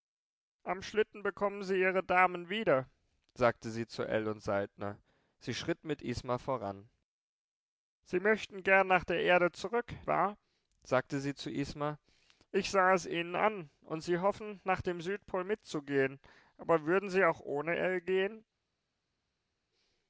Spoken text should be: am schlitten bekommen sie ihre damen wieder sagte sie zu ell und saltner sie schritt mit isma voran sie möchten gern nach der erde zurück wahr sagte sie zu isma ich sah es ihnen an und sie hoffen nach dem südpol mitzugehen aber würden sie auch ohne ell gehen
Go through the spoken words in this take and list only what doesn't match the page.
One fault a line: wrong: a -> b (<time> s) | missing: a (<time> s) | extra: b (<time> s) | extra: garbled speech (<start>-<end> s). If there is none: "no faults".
no faults